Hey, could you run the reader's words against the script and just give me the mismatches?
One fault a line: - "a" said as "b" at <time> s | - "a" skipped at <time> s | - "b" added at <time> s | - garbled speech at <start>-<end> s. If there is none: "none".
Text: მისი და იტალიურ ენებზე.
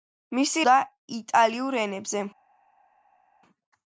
none